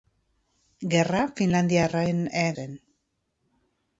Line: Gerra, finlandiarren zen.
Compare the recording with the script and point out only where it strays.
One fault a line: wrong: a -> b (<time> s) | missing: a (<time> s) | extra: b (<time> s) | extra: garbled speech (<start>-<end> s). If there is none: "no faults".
no faults